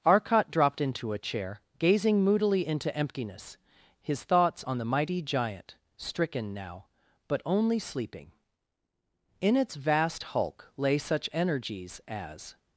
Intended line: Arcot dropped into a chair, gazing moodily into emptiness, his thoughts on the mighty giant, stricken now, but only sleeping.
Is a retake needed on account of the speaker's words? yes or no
yes